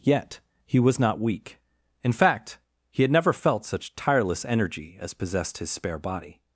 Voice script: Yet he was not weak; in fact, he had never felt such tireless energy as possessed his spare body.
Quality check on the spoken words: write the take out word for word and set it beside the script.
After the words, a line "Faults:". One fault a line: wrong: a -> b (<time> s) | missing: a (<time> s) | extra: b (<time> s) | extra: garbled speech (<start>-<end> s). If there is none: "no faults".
Yet he was not weak; in fact, he had never felt such tireless energy as possessed his spare body.
Faults:
no faults